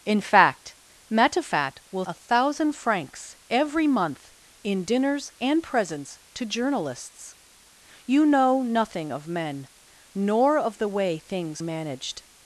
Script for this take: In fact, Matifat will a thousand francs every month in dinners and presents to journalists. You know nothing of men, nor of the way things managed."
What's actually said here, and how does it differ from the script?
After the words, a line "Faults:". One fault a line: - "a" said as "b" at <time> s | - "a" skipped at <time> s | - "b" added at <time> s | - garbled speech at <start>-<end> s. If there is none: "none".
In fact, Matifat will a thousand francs every month in dinners and presents to journalists. You know nothing of men, nor of the way things managed."
Faults:
none